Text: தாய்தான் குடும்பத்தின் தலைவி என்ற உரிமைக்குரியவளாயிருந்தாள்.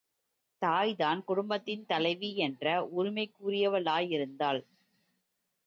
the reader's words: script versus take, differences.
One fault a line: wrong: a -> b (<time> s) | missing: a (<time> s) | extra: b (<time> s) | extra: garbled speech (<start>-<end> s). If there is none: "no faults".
no faults